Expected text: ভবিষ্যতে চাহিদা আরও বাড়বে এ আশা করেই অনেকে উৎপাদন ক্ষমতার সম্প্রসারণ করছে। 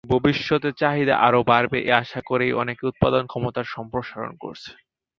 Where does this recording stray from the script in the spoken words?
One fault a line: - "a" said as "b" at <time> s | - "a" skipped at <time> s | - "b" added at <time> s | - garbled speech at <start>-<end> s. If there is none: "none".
none